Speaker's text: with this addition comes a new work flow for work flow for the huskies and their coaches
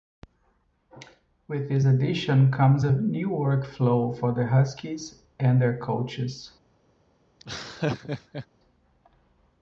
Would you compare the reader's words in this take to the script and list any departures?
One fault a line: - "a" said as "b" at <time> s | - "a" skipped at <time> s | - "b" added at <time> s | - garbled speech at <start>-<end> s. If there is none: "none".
- "work flow for" skipped at 4.3 s